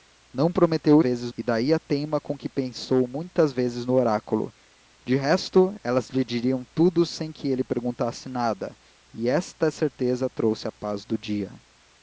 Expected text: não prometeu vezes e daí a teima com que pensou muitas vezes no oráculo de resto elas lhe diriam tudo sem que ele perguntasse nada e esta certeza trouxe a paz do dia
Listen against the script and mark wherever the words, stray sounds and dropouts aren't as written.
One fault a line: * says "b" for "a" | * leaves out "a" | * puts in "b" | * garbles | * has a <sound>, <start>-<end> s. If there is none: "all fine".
all fine